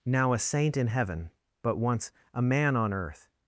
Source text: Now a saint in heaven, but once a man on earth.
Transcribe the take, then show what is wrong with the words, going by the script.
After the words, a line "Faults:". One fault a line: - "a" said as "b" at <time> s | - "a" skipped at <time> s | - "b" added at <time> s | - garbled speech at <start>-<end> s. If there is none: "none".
Now a saint in heaven, but once a man on earth.
Faults:
none